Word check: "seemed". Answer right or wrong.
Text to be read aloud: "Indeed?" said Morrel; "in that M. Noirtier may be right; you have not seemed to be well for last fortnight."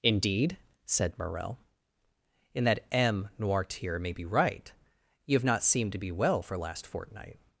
right